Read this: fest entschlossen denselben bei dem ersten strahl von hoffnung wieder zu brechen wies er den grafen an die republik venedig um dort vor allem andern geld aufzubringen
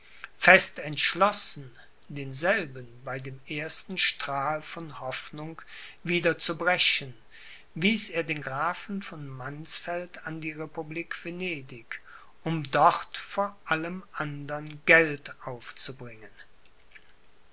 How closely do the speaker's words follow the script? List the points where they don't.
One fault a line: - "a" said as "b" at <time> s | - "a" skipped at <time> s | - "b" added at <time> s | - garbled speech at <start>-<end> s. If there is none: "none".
- "von mannsfeld" added at 9.0 s